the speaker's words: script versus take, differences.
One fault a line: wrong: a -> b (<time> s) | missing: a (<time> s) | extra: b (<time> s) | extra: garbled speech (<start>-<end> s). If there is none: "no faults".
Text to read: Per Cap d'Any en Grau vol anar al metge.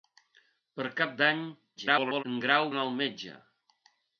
extra: garbled speech (1.8-2.2 s)
missing: vol (2.7 s)